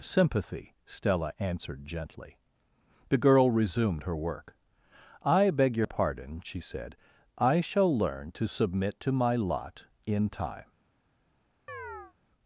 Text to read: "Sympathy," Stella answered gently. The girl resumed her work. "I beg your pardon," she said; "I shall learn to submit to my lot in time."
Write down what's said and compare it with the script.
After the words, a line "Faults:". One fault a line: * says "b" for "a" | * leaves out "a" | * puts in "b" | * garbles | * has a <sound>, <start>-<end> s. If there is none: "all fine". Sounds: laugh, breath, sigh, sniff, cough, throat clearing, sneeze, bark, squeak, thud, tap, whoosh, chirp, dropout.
"Sympathy," Stella answered gently. The girl resumed her work. "I beg your pardon," she said; "I shall learn to submit to my lot in time."
Faults:
* has a chirp, 11.7-12.1 s